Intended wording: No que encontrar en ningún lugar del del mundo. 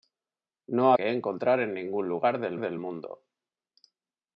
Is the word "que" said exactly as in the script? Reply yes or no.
yes